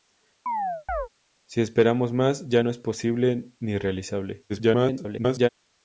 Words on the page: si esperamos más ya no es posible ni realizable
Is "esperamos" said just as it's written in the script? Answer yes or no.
yes